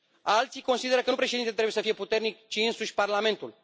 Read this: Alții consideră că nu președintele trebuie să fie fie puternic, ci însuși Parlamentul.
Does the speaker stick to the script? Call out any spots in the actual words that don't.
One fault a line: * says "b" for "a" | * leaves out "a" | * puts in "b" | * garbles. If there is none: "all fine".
* leaves out "fie"